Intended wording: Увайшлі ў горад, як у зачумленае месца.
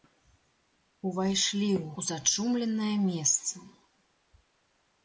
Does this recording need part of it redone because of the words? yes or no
yes